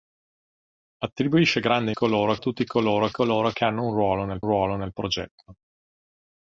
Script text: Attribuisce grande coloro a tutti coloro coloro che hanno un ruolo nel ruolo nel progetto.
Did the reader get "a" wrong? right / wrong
right